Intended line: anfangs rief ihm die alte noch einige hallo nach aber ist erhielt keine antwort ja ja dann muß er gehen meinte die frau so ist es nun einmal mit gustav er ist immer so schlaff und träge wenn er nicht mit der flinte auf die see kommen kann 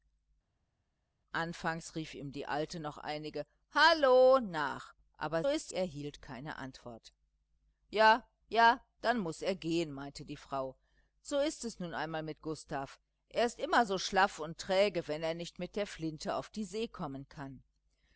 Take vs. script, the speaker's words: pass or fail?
pass